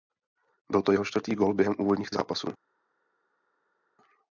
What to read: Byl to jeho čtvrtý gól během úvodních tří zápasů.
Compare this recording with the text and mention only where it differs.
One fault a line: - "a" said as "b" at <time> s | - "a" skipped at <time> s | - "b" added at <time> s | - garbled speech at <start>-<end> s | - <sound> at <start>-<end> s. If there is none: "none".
- "tří" skipped at 2.1 s